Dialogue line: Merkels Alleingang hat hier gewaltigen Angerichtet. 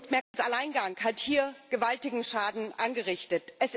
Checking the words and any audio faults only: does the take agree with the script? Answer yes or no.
no